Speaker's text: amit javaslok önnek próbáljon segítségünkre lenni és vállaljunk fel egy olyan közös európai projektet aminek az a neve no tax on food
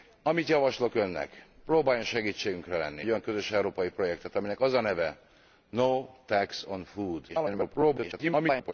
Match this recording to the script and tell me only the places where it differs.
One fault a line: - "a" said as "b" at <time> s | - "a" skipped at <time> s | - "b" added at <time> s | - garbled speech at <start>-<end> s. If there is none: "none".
- "és vállaljunk fel" skipped at 3.0 s
- garbled speech at 7.3-8.7 s